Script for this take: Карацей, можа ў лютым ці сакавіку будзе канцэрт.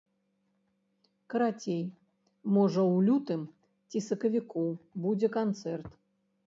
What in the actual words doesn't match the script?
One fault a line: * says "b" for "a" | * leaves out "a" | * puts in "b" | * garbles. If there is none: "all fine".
all fine